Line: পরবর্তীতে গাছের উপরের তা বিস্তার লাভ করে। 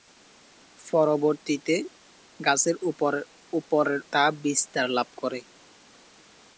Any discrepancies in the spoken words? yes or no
no